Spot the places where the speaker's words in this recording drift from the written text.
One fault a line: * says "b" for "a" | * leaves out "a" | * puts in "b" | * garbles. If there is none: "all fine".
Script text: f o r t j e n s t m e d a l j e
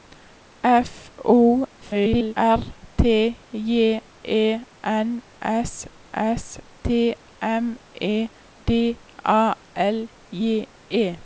* garbles
* puts in "s"